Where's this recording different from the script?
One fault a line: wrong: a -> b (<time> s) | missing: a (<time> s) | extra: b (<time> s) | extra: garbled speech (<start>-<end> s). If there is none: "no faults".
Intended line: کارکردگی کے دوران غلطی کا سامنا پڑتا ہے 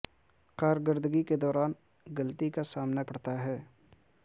no faults